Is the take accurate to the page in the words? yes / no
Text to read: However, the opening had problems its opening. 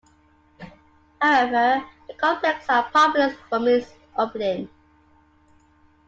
no